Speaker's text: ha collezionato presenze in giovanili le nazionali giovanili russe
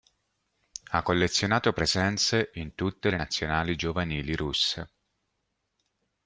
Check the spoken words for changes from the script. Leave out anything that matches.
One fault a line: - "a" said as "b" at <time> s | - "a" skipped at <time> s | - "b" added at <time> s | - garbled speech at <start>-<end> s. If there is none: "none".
- "giovanili" said as "tutte" at 2.7 s